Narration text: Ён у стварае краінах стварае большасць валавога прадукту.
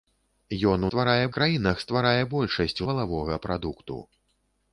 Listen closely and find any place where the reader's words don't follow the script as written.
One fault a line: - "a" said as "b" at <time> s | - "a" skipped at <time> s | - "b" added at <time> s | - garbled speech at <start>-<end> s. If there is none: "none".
none